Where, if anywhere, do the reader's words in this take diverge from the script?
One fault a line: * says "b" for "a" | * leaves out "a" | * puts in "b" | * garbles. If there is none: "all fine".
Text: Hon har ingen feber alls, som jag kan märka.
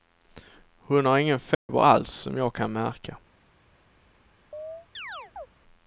all fine